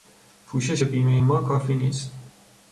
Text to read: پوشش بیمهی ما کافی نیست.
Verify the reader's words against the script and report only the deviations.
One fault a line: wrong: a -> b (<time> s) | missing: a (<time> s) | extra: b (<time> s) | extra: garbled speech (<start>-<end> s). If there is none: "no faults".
no faults